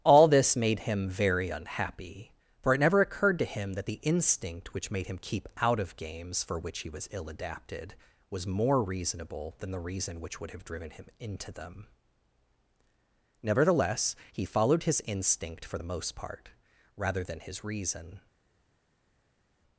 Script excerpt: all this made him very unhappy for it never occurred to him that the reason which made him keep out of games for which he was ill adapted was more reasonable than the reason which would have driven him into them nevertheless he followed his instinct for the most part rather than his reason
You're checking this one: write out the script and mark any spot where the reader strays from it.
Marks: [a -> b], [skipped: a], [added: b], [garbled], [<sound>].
all this made him very unhappy for it never occurred to him that the [reason -> instinct] which made him keep out of games for which he was ill adapted was more reasonable than the reason which would have driven him into them nevertheless he followed his instinct for the most part rather than his reason